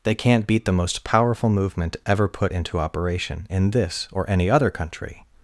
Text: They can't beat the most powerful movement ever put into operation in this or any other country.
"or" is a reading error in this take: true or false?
false